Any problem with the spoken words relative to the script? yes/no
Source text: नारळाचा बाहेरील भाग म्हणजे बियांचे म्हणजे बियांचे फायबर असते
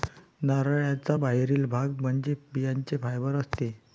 yes